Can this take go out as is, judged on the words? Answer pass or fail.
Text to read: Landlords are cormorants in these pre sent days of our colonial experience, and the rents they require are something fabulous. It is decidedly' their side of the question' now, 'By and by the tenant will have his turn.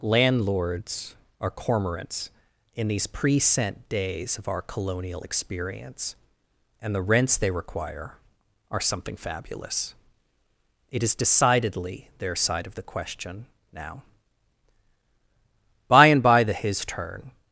fail